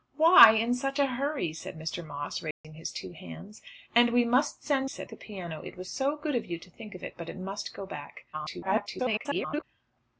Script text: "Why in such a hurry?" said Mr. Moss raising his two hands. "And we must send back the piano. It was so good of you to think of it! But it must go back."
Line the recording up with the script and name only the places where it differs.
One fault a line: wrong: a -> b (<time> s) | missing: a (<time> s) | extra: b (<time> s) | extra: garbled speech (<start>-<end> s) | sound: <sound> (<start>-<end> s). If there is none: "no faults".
sound: dropout (2.5-2.6 s)
wrong: back -> said (4.8 s)
extra: garbled speech (8.3-9.6 s)